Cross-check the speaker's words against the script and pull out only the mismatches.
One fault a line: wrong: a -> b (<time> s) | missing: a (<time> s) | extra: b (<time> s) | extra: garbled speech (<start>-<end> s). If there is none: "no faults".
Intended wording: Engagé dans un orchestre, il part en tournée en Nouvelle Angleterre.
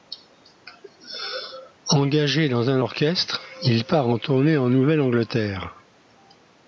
no faults